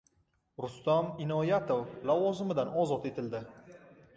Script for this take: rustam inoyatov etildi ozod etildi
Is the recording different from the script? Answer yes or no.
yes